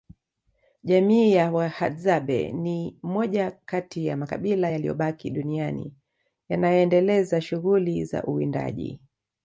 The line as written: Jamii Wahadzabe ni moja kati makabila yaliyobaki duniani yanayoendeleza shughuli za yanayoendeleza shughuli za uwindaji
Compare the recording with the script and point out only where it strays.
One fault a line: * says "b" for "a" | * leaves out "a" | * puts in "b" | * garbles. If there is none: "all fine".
* puts in "ya"
* puts in "ya"
* leaves out "yanayoendeleza shughuli za"